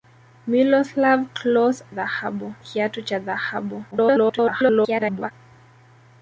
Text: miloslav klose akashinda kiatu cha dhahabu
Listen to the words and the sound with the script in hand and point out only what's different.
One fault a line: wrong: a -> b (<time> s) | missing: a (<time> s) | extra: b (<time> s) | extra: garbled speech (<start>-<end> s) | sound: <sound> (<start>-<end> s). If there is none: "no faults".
wrong: akashinda -> dhahabu (1.9 s)
extra: garbled speech (3.9-5.3 s)